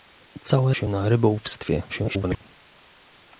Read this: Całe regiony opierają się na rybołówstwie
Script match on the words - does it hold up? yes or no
no